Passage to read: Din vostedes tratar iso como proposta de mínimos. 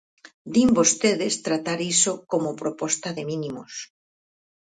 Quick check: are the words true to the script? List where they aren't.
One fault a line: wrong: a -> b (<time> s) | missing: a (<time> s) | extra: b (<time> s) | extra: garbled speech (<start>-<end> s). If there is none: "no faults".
no faults